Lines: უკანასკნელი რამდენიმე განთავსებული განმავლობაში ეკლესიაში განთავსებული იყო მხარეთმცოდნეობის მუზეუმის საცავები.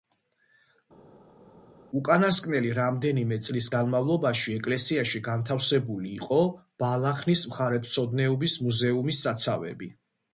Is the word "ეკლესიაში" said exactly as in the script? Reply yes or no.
yes